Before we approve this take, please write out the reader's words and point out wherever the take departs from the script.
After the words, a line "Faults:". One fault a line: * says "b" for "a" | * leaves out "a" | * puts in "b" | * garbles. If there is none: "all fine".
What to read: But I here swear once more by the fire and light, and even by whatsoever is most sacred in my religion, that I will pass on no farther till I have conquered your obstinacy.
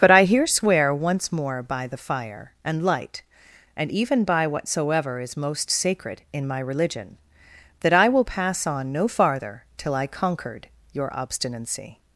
But I here swear once more by the fire and light, and even by whatsoever is most sacred in my religion, that I will pass on no farther till I conquered your obstinacy.
Faults:
* leaves out "have"